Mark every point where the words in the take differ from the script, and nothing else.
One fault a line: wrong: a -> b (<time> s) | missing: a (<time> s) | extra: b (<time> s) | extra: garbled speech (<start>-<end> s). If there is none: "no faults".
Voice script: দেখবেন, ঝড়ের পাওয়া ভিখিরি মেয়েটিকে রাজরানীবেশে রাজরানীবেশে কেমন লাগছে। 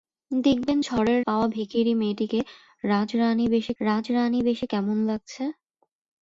no faults